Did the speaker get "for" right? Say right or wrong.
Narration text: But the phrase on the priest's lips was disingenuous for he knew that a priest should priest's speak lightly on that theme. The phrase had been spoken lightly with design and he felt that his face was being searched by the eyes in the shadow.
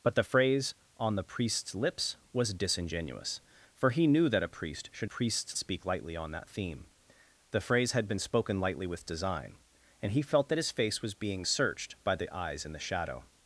right